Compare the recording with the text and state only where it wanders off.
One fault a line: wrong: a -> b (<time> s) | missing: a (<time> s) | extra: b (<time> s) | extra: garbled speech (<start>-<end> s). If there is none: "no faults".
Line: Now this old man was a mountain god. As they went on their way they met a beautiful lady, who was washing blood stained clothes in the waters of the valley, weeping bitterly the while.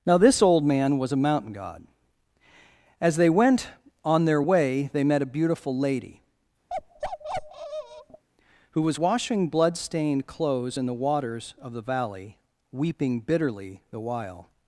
no faults